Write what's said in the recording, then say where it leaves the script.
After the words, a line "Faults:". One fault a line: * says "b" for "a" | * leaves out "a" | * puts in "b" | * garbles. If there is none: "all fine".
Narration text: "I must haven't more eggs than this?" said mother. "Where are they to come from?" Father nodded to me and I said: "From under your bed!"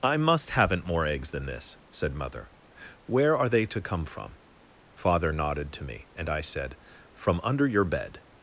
"I must haven't more eggs than this?" said mother. "Where are they to come from?" Father nodded to me and I said: "From under your bed!"
Faults:
all fine